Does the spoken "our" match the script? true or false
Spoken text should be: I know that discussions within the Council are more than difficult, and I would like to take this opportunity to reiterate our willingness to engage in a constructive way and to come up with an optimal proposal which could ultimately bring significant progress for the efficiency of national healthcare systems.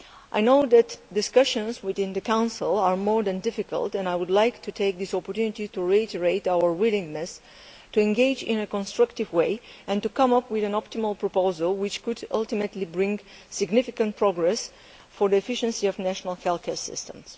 true